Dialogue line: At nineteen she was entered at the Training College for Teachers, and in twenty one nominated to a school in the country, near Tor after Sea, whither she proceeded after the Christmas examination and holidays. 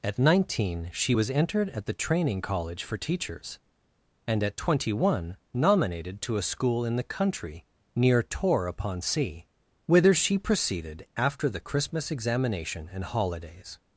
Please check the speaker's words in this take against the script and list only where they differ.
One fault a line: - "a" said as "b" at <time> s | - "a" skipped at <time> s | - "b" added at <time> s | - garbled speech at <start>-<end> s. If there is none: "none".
- "in" said as "at" at 4.4 s
- "after" said as "upon" at 8.7 s